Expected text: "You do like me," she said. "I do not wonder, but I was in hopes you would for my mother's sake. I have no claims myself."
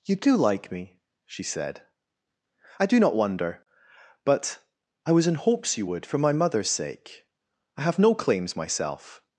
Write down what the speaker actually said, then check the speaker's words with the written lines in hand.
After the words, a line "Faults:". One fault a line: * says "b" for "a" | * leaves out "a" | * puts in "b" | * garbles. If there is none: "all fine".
"You do like me," she said. "I do not wonder, but I was in hopes you would for my mother's sake. I have no claims myself."
Faults:
all fine